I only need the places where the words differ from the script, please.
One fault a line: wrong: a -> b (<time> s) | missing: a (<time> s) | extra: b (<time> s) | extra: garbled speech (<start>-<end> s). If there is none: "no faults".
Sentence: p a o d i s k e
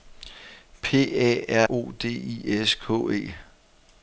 no faults